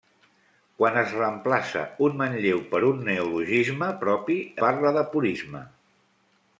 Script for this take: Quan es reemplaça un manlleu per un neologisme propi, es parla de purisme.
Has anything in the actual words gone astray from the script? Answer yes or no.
yes